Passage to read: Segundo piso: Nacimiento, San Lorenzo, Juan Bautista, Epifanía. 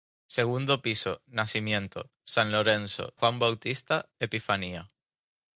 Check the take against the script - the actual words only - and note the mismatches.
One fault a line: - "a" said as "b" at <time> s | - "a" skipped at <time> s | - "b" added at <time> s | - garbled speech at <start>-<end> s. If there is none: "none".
none